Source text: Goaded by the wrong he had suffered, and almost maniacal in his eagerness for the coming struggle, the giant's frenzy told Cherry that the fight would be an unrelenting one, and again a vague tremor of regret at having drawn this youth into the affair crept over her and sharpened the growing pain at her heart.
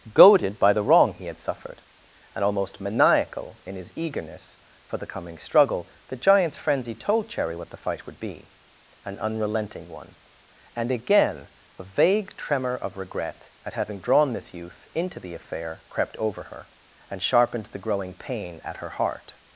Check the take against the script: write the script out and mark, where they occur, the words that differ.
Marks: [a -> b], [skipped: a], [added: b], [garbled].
Goaded by the wrong he had suffered, and almost maniacal in his eagerness for the coming struggle, the giant's frenzy told Cherry [that -> what] the fight would be an unrelenting one, and again a vague tremor of regret at having drawn this youth into the affair crept over her and sharpened the growing pain at her heart.